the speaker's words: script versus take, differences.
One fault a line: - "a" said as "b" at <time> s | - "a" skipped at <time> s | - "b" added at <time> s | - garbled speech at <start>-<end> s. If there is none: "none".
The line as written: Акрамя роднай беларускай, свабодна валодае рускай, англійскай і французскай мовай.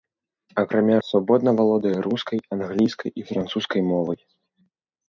- "роднай беларускай" skipped at 0.9 s